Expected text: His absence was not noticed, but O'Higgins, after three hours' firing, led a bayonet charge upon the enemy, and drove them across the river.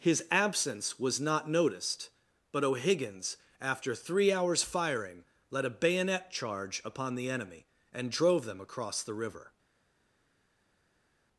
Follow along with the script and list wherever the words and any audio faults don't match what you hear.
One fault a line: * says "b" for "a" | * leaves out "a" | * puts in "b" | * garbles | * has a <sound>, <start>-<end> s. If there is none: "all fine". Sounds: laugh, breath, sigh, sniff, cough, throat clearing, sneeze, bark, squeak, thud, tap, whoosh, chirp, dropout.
all fine